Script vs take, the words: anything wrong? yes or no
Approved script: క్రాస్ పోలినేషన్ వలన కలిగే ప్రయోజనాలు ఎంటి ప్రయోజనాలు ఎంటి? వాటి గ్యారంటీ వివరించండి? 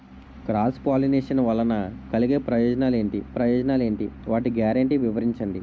no